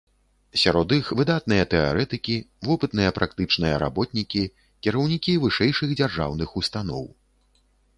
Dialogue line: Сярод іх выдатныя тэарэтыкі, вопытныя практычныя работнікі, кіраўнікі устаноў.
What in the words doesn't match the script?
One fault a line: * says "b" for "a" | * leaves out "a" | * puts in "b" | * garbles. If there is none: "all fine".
* puts in "вышэйшых дзяржаўных"